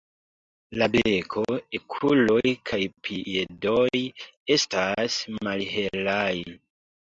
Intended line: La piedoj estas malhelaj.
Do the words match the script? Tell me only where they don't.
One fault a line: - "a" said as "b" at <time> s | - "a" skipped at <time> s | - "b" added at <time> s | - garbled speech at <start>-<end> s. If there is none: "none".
- "beko okuloj kaj" added at 0.9 s